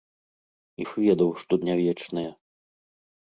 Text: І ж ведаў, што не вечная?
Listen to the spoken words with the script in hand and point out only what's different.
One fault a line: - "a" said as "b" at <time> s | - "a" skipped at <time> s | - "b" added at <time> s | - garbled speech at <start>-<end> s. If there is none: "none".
none